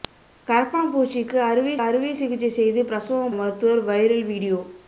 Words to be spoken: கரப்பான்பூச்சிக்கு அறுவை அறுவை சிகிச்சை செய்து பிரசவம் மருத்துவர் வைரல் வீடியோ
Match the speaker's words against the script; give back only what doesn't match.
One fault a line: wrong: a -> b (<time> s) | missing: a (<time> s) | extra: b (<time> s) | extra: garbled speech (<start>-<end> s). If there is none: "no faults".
no faults